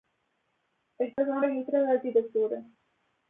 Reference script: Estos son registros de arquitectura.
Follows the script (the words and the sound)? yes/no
no